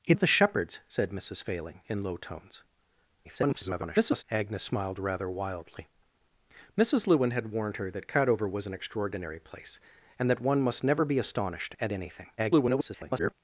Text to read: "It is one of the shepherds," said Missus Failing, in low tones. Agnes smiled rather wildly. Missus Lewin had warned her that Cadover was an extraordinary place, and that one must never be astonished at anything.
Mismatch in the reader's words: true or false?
true